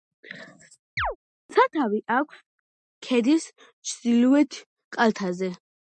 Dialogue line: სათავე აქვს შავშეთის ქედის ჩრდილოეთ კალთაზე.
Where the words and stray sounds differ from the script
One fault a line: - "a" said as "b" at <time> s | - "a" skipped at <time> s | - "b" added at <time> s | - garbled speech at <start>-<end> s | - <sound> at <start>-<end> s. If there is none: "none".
- chirp at 1.0-1.2 s
- "შავშეთის" skipped at 2.4 s